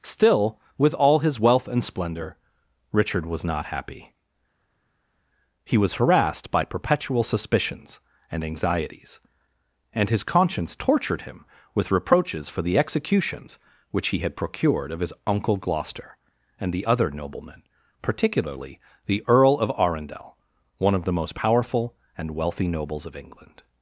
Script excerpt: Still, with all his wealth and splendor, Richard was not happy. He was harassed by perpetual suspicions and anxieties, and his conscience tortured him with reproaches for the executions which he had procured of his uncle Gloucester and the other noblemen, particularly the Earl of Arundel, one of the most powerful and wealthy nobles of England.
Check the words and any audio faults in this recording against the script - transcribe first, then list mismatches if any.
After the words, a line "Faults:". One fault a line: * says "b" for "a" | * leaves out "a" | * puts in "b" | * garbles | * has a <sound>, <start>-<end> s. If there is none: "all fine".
Still, with all his wealth and splendor, Richard was not happy. He was harassed by perpetual suspicions and anxieties, and his conscience tortured him with reproaches for the executions which he had procured of his uncle Gloucester and the other noblemen, particularly the Earl of Arundel, one of the most powerful and wealthy nobles of England.
Faults:
all fine